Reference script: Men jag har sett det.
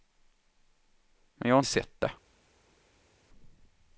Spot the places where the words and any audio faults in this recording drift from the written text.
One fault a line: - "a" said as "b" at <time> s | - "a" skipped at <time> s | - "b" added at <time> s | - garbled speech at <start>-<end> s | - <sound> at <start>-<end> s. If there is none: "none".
none